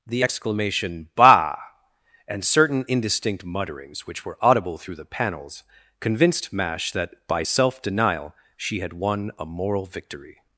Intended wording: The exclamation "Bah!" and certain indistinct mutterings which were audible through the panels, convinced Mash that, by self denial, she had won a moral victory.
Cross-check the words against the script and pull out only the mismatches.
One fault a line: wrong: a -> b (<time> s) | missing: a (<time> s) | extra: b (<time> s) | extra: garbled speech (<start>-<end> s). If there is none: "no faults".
no faults